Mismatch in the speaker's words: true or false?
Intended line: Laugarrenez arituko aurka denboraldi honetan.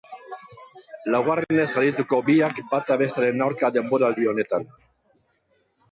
true